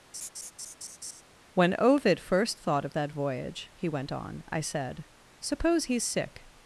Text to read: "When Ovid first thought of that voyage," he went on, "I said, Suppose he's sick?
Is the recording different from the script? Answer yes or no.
no